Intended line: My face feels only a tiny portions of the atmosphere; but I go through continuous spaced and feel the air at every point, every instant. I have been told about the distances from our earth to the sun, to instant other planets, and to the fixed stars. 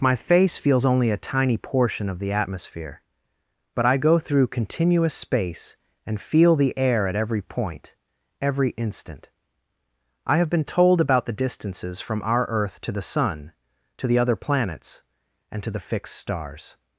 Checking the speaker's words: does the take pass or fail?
fail